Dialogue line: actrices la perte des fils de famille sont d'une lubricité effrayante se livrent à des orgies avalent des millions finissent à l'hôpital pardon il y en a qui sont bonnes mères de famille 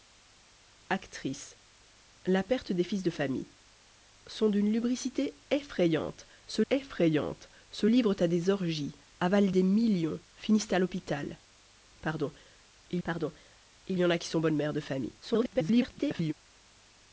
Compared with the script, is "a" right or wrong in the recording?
right